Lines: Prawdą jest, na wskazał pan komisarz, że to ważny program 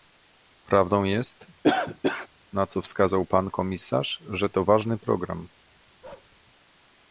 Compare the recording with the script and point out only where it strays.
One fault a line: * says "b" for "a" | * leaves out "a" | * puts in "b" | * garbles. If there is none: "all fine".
* puts in "co"